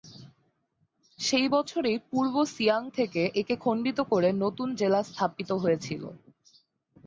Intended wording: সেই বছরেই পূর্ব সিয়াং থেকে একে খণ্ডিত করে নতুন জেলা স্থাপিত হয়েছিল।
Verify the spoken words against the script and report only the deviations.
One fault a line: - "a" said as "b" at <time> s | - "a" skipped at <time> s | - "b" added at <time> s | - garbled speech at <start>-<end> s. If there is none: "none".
none